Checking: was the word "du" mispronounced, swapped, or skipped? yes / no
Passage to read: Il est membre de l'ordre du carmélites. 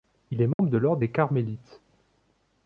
yes